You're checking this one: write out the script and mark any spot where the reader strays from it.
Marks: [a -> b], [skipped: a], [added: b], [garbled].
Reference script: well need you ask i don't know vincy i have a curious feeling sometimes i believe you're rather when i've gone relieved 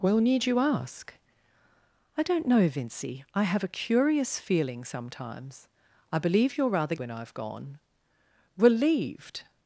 well need you ask i don't know vincy i have a curious feeling sometimes i believe you're rather when i've gone relieved